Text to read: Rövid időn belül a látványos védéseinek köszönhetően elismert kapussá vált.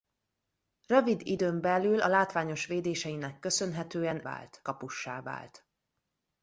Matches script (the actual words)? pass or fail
fail